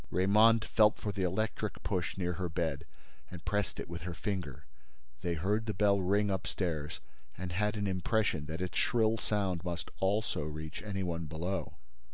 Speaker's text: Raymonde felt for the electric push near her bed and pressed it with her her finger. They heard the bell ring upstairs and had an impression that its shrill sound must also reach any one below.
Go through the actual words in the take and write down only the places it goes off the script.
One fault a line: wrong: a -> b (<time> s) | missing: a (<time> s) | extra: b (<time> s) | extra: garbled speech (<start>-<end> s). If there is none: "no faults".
missing: her (4.2 s)